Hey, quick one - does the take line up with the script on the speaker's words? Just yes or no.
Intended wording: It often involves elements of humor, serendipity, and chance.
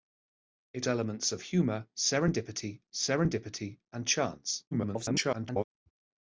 no